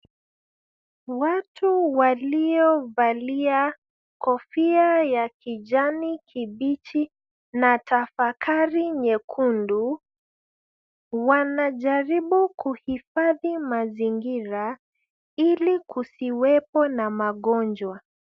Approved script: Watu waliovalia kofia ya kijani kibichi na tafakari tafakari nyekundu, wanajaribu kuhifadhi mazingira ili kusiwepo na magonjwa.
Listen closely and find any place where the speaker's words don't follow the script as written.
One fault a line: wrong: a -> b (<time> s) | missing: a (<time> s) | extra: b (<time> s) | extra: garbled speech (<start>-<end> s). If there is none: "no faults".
missing: tafakari (8.9 s)